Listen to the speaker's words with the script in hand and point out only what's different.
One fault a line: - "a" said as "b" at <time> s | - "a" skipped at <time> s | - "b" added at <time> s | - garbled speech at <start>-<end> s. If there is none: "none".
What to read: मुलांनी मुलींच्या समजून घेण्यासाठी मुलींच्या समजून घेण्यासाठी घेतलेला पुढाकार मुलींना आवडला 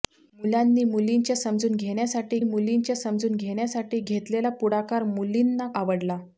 none